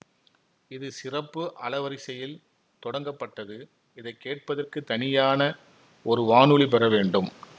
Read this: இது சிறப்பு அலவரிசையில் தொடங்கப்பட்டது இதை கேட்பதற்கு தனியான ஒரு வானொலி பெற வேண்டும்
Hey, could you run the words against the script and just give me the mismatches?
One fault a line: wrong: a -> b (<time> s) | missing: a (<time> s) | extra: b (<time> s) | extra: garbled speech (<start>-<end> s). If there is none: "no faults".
no faults